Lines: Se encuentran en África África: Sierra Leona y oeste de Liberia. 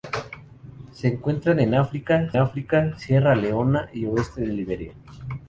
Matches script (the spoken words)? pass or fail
pass